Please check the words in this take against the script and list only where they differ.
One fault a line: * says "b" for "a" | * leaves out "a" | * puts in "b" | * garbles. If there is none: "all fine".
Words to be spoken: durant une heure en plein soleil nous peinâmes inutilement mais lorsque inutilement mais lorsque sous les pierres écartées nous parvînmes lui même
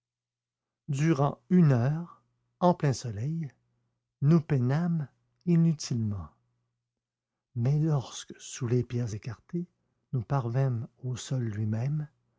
* leaves out "inutilement mais lorsque"
* puts in "au sol"